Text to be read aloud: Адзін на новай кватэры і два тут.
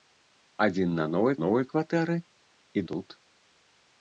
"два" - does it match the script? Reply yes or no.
no